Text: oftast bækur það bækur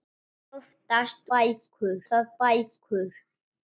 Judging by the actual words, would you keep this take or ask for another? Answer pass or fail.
pass